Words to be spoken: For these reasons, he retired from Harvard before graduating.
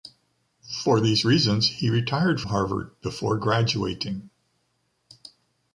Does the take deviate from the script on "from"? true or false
true